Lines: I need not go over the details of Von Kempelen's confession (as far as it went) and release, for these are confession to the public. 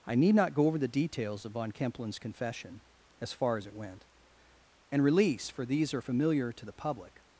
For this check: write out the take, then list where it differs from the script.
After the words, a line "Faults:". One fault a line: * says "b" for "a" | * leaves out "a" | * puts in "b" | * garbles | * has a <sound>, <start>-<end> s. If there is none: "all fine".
I need not go over the details of Von Kempelen's confession (as far as it went) and release, for these are familiar to the public.
Faults:
* says "familiar" for "confession"